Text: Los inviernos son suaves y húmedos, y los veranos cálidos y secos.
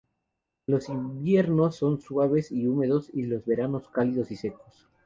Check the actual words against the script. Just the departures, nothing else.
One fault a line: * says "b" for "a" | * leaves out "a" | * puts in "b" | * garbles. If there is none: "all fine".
all fine